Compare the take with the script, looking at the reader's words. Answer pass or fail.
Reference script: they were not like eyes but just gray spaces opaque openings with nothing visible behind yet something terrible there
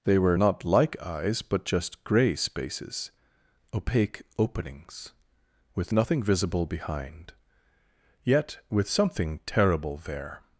fail